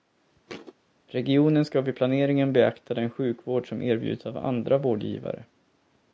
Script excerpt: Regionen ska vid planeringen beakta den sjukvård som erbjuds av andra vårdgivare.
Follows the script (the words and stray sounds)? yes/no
no